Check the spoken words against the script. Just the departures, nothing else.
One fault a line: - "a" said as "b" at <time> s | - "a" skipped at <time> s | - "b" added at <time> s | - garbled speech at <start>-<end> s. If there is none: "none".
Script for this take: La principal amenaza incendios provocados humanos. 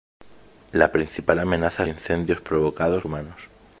none